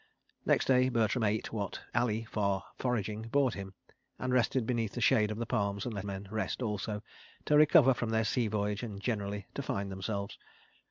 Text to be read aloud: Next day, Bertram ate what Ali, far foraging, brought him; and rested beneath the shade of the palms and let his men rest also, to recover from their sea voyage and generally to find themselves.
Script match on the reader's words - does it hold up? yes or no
no